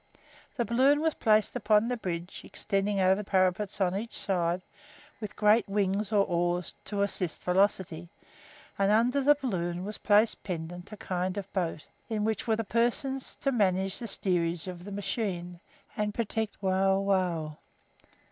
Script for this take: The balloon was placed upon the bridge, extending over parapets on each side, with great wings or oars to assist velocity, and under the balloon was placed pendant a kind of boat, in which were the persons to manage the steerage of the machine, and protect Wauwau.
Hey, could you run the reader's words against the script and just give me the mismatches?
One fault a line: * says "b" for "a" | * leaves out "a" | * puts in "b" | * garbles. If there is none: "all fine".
all fine